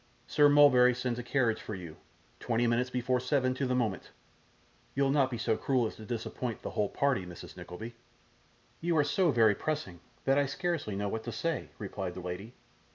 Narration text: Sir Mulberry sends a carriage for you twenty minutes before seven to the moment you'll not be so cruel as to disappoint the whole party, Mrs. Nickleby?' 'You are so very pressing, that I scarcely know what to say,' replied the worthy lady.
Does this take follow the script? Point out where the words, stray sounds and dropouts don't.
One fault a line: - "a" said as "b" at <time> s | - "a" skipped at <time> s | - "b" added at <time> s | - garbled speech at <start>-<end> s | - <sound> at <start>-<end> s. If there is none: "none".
- "worthy" skipped at 12.2 s